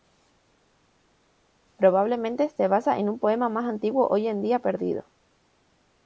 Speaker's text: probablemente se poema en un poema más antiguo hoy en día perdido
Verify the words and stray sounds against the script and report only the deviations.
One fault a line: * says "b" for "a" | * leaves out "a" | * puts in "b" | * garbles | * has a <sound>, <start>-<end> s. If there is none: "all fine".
* says "basa" for "poema"